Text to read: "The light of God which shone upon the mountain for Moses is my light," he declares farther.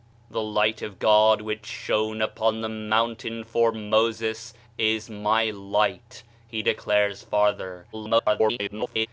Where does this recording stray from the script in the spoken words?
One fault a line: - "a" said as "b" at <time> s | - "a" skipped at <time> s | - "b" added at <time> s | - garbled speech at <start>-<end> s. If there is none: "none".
- garbled speech at 7.9-9.1 s